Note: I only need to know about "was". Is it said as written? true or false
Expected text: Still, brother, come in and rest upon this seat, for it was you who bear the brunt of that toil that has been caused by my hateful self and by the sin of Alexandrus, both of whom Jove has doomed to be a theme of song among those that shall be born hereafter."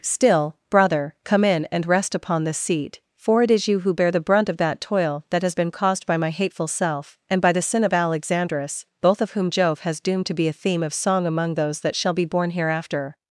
false